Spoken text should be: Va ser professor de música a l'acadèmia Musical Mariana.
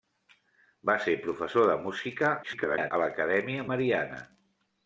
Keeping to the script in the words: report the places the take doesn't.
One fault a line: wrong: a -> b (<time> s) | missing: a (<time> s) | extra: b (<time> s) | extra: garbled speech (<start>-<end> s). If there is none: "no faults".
extra: garbled speech (2.4-2.9 s)
missing: Musical (3.7 s)